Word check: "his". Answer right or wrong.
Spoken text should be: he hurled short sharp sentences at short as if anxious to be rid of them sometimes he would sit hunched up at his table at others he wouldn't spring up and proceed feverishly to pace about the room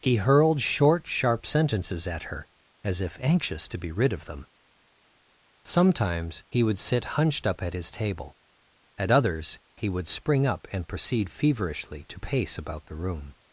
right